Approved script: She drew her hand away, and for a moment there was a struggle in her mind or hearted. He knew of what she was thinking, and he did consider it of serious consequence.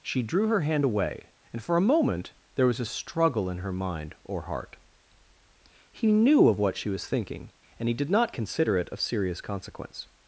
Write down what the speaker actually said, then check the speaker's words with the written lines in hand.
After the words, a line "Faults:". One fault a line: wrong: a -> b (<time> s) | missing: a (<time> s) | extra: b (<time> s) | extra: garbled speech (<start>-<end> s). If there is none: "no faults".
She drew her hand away, and for a moment there was a struggle in her mind or heart. He knew of what she was thinking, and he did not consider it of serious consequence.
Faults:
wrong: hearted -> heart (4.4 s)
extra: not (8.1 s)